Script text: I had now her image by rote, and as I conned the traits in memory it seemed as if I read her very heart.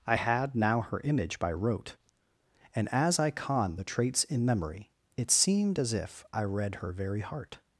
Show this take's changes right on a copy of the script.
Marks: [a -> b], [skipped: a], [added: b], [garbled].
I had now her image by rote, and as I conned the traits in memory it seemed as if I read her very heart.